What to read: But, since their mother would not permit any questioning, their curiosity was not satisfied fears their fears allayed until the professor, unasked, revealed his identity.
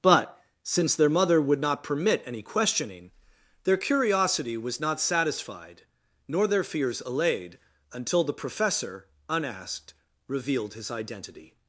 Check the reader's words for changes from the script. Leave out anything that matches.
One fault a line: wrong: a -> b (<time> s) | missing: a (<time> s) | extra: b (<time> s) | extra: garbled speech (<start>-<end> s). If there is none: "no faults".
wrong: fears -> nor (6.3 s)